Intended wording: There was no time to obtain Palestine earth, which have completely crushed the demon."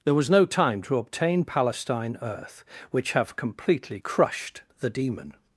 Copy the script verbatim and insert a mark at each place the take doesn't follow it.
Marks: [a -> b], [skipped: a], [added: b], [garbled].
There was no time to obtain Palestine earth, which have completely crushed the demon."